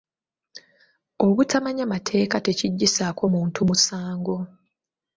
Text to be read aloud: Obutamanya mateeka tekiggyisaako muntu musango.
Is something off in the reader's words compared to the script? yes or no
no